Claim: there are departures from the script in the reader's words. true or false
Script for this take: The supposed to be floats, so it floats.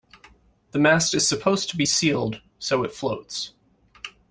true